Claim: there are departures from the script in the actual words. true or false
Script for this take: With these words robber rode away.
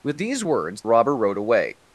false